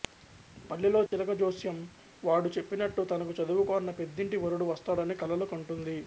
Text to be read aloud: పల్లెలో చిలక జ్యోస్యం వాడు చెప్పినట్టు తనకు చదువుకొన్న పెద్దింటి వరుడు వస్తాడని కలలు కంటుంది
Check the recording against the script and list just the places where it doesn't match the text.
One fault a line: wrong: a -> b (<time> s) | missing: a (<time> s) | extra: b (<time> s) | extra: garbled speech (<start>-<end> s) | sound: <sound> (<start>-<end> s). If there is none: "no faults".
sound: dropout (1.1-1.1 s)